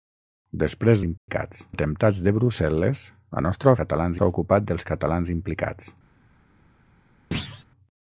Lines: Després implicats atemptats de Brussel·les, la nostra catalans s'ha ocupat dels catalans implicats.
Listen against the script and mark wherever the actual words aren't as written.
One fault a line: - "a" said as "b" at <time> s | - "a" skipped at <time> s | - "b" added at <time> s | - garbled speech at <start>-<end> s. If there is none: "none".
none